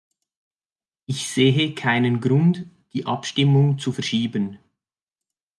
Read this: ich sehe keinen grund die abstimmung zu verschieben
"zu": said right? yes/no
yes